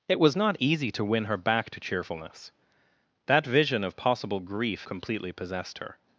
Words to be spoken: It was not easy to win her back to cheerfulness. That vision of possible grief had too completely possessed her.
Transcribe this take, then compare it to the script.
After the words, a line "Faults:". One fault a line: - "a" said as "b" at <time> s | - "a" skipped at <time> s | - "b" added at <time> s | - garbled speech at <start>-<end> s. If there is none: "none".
It was not easy to win her back to cheerfulness. That vision of possible grief completely possessed her.
Faults:
- "had too" skipped at 4.9 s